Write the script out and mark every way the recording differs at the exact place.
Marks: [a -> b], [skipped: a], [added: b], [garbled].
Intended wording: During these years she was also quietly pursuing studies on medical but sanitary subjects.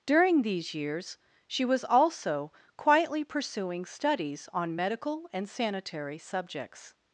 During these years she was also quietly pursuing studies on medical [but -> and] sanitary subjects.